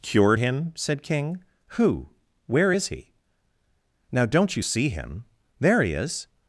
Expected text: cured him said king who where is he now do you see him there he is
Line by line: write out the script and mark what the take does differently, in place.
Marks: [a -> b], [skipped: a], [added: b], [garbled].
cured him said king who where is he now [do -> don't] you see him there he is